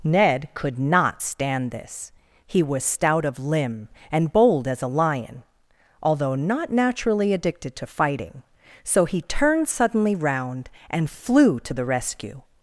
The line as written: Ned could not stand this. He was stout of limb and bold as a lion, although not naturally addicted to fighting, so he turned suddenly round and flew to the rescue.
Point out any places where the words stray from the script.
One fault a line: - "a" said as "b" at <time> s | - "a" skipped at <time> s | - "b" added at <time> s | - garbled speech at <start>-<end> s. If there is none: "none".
none